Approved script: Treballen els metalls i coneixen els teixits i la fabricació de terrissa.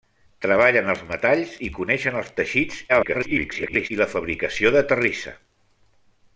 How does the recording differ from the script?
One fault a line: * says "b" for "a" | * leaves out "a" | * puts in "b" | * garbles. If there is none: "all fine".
* garbles